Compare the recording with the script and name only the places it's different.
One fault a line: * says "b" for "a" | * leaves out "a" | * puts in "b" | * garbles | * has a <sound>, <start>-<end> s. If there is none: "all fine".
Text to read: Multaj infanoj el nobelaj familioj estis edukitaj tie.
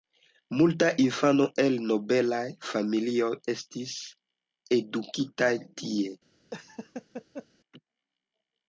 * has a laugh, 6.5-7.5 s